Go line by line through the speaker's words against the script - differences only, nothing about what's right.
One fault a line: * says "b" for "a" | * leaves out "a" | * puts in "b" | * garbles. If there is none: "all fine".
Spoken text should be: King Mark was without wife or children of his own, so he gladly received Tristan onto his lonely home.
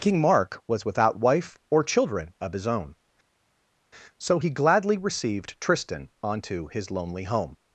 all fine